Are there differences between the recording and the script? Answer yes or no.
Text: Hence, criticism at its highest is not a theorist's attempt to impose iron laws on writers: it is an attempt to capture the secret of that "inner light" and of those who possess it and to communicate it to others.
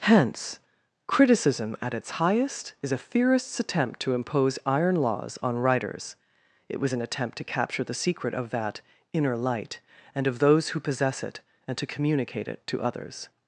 yes